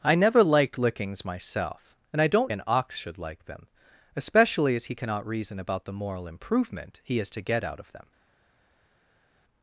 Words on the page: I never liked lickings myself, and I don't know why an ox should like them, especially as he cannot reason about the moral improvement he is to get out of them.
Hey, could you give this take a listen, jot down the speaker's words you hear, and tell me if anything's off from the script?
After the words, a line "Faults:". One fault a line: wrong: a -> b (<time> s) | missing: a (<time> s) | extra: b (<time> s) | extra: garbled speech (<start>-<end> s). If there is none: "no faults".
I never liked lickings myself, and I don't an ox should like them, especially as he cannot reason about the moral improvement he is to get out of them.
Faults:
missing: know why (2.5 s)